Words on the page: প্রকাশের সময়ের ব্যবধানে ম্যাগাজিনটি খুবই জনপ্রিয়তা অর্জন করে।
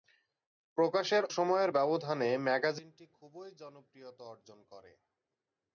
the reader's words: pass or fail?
pass